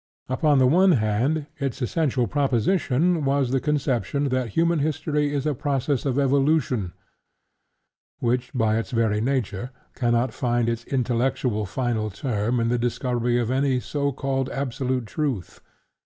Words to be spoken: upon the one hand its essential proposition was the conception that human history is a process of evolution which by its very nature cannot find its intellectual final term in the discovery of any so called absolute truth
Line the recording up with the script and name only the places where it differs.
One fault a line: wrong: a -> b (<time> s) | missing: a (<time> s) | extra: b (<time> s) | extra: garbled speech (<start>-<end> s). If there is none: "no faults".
no faults